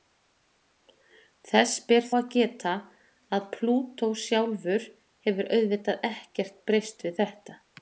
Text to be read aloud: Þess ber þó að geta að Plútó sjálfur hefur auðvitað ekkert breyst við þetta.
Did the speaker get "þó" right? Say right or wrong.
wrong